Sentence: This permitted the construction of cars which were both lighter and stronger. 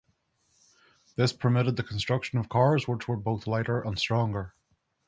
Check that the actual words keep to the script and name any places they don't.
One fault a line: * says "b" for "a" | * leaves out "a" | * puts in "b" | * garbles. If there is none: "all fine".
all fine